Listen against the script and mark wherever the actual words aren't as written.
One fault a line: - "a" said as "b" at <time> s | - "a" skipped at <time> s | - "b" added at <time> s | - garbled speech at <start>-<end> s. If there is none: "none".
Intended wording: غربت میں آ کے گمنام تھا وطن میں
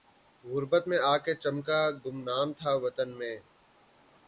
- "چمکا" added at 1.4 s